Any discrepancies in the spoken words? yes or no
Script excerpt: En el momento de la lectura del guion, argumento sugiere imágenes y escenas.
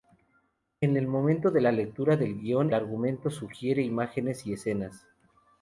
no